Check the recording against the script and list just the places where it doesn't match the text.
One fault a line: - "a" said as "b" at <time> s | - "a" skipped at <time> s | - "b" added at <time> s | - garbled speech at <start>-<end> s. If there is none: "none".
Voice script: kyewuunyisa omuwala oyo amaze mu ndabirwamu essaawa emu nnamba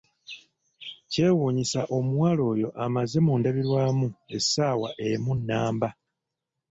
none